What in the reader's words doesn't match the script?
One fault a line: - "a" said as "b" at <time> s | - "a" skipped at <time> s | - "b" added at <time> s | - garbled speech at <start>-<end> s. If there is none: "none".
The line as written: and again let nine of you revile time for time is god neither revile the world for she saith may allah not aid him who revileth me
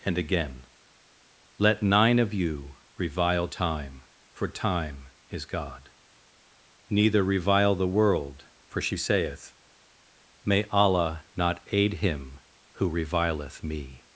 none